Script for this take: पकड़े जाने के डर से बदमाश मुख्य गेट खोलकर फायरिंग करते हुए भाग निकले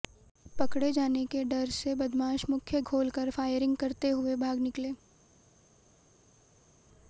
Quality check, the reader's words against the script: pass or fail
fail